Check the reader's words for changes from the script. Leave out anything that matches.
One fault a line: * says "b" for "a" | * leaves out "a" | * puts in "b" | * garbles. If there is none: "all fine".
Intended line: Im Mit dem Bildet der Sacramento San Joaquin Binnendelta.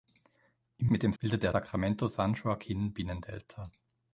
all fine